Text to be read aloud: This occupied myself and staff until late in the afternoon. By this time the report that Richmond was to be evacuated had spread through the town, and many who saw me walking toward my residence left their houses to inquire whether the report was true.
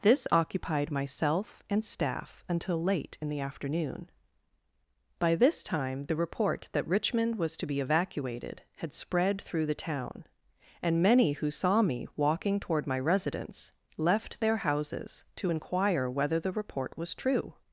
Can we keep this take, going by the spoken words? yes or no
yes